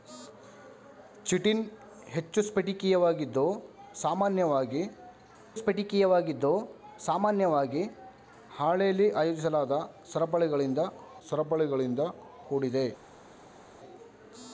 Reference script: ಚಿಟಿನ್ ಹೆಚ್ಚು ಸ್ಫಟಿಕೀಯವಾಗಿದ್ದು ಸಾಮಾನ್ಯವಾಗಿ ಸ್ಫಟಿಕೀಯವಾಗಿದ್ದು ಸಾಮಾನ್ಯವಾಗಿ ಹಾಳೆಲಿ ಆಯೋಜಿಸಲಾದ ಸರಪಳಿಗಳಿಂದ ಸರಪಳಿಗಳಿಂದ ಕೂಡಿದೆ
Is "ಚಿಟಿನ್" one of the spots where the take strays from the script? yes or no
no